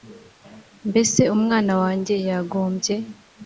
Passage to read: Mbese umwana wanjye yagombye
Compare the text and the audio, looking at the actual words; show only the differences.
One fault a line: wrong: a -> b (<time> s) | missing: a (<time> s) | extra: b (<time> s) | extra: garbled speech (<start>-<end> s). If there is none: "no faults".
no faults